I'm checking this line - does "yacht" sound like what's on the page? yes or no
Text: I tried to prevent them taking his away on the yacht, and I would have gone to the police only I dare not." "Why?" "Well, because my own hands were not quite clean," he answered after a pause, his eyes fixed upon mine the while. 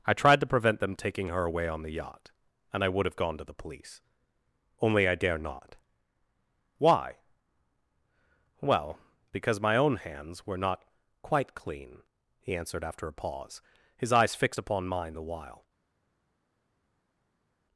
yes